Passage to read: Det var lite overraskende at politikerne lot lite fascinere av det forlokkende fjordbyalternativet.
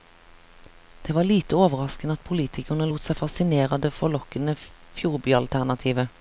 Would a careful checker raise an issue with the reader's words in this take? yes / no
yes